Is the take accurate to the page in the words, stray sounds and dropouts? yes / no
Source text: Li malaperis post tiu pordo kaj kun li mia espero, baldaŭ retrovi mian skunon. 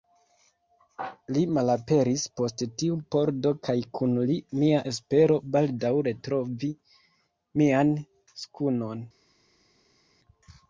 yes